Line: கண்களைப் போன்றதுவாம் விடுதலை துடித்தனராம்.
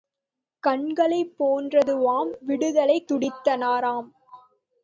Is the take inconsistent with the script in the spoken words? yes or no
no